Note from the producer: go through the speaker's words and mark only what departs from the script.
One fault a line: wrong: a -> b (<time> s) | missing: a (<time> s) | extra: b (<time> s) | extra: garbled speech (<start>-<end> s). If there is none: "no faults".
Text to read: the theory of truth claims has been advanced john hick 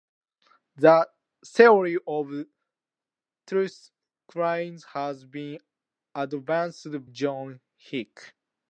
no faults